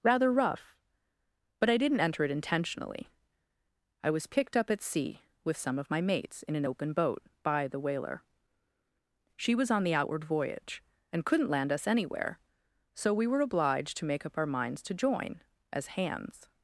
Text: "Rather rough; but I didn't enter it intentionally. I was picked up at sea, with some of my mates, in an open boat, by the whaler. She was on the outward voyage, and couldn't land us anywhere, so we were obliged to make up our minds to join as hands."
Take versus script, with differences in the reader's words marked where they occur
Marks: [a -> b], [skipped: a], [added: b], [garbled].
"Rather rough; but I didn't enter it intentionally. I was picked up at sea, with some of my mates, in an open boat, by the whaler. She was on the outward voyage, and couldn't land us anywhere, so we were obliged to make up our minds to join as hands."